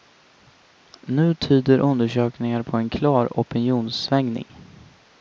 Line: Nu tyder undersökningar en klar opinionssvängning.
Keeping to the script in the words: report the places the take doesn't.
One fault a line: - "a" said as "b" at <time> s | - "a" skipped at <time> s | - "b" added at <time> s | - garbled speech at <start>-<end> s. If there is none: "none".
- "på" added at 2.6 s